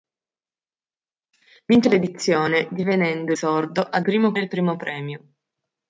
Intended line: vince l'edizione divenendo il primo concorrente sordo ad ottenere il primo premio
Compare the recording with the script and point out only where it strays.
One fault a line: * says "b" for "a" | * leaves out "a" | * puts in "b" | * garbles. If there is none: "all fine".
* leaves out "il primo concorrente"
* says "primo" for "ottenere"